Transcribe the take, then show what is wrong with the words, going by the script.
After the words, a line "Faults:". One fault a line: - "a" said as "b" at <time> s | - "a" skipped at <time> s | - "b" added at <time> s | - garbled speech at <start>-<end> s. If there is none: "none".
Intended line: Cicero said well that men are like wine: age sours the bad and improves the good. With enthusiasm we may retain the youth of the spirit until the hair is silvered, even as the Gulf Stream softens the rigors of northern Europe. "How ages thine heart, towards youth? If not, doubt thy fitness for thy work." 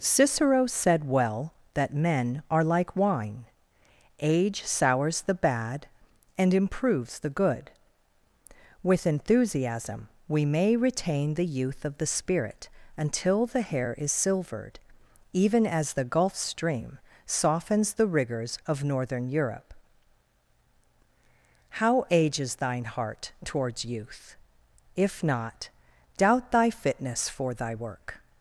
Cicero said well that men are like wine: age sours the bad and improves the good. With enthusiasm we may retain the youth of the spirit until the hair is silvered, even as the Gulf Stream softens the rigors of northern Europe. "How ages thine heart, towards youth? If not, doubt thy fitness for thy work."
Faults:
none